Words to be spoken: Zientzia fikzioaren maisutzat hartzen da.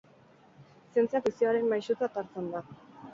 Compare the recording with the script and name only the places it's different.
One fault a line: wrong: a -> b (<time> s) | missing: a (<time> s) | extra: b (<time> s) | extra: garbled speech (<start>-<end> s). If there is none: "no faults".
no faults